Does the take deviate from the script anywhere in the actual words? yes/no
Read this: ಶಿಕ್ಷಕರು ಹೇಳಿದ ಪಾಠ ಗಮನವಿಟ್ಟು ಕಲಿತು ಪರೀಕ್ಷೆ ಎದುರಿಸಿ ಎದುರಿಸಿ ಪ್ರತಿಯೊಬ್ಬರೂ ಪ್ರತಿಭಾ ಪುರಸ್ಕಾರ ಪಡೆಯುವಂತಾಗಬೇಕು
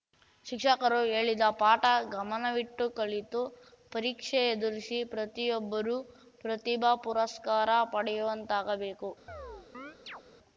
yes